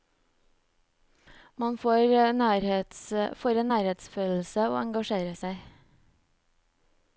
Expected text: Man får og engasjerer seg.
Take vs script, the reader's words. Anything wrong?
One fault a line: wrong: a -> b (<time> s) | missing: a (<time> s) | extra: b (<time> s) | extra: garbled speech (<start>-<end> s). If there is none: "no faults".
extra: en nærhetsfølelse (3.6 s)